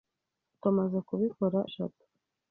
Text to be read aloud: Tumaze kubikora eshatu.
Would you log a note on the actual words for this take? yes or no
no